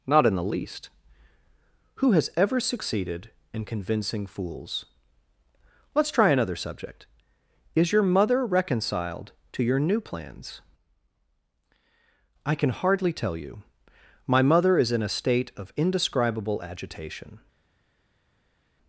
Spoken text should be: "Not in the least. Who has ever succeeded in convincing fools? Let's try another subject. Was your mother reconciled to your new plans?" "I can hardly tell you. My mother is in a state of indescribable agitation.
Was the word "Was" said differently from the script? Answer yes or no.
yes